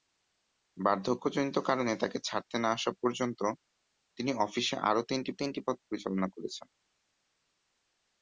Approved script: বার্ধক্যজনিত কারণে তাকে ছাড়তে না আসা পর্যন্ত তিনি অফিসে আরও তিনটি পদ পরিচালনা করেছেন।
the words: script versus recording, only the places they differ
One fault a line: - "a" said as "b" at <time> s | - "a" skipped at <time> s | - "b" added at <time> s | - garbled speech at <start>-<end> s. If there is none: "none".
- "তিনটি" added at 5.4 s